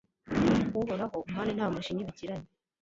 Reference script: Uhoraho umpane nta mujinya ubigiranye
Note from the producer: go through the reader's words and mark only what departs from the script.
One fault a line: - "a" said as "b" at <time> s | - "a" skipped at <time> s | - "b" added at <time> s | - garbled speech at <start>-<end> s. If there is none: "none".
none